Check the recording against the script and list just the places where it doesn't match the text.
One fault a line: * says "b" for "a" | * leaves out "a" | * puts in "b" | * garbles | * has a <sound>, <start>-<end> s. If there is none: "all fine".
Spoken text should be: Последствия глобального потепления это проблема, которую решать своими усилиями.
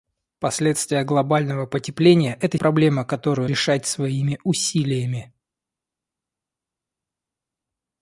all fine